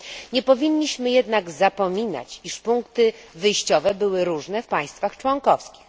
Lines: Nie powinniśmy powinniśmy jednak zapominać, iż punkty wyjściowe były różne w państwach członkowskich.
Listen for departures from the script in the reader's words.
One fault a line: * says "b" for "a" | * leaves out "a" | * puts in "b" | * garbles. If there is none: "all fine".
* leaves out "powinniśmy"